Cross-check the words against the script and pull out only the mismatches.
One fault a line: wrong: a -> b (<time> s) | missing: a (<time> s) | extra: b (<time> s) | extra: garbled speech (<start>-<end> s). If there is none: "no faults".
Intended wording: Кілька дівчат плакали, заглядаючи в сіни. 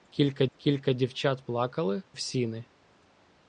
extra: кілька (0.6 s)
missing: заглядаючи (2.0 s)